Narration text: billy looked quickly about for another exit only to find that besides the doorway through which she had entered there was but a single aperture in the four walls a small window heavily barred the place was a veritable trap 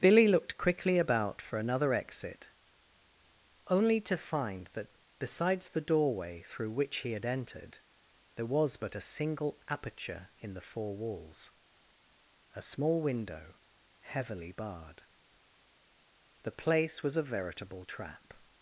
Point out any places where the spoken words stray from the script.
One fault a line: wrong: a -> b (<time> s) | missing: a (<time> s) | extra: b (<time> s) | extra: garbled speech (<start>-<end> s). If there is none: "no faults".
wrong: she -> he (7.0 s)